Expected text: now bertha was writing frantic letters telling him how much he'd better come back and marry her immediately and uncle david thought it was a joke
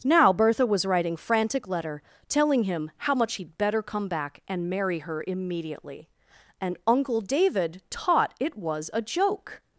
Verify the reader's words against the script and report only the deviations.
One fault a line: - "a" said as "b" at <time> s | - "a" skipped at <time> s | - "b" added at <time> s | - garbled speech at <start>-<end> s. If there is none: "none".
- "letters" said as "letter" at 1.7 s
- "thought" said as "taught" at 7.9 s